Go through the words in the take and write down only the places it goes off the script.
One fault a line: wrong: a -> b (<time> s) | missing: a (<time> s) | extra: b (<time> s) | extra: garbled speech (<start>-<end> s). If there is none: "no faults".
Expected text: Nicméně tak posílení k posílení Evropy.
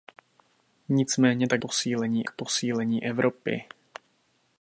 no faults